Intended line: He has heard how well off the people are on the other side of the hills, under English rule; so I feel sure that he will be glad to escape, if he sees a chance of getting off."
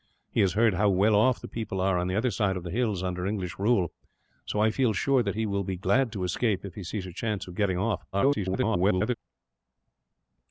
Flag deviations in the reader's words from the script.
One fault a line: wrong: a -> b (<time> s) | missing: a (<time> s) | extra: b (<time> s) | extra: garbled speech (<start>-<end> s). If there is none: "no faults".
extra: garbled speech (8.1-9.2 s)